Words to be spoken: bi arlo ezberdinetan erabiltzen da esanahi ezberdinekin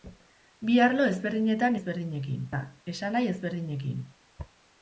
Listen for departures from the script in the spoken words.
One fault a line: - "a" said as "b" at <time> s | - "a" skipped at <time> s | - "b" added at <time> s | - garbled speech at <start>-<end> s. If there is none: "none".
- "erabiltzen" said as "ezberdinekin" at 1.8 s